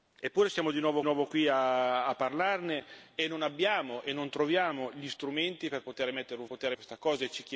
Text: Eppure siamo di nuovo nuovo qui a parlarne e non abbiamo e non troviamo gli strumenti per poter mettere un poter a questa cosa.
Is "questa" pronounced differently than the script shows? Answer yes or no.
no